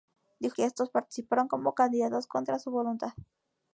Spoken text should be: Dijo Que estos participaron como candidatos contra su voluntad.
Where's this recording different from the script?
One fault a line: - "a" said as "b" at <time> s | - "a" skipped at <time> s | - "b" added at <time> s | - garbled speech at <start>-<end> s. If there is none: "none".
none